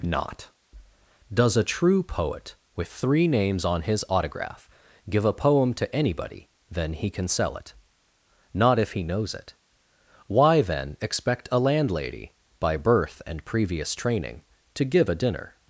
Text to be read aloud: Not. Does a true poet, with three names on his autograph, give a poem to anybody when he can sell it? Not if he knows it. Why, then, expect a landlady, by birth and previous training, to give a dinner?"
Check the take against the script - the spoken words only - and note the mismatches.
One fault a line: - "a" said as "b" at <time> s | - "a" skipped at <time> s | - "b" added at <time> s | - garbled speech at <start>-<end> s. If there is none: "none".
- "when" said as "then" at 6.7 s